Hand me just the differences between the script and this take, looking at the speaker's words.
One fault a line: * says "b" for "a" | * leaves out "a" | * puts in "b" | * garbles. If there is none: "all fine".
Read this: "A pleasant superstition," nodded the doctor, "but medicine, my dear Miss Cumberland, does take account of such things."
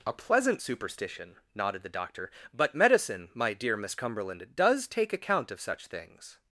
all fine